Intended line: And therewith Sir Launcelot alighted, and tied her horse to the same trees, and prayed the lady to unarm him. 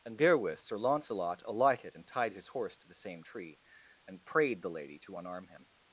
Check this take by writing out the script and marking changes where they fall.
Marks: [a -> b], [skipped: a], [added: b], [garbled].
And therewith Sir Launcelot alighted, and tied [her -> his] horse to the same [trees, -> tree] and prayed the lady to unarm him.